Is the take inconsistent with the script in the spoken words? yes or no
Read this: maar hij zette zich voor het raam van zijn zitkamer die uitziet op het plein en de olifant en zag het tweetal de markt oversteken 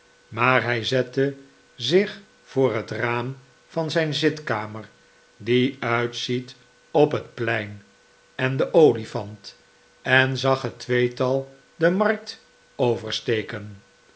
no